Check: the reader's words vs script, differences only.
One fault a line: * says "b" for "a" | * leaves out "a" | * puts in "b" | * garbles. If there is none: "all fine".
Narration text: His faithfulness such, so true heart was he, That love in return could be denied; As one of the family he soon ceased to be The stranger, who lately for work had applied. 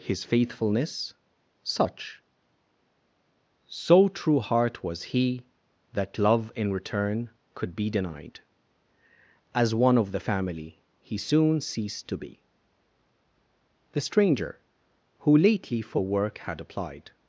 all fine